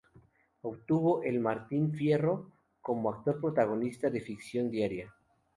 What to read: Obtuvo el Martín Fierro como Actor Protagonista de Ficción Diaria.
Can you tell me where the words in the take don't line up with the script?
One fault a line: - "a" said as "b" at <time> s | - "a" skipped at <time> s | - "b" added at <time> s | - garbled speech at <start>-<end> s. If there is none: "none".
none